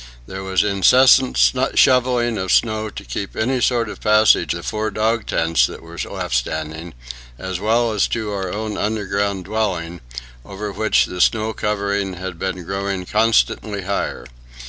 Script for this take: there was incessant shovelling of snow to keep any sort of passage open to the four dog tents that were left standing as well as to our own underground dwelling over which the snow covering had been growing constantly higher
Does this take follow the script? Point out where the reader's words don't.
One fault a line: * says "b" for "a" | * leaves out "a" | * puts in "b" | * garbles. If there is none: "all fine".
* leaves out "open to"